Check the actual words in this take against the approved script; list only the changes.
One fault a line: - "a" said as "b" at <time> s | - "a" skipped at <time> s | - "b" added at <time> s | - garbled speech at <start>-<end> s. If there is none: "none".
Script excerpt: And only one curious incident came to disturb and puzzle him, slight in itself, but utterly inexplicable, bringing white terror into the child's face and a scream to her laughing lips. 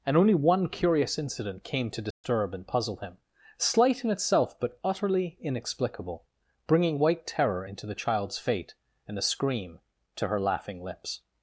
- "face" said as "fate" at 8.4 s